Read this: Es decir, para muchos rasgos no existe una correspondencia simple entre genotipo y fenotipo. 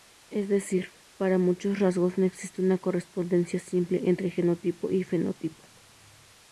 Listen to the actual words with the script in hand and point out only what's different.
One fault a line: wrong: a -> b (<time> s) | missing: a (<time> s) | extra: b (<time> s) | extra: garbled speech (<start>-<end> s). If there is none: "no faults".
no faults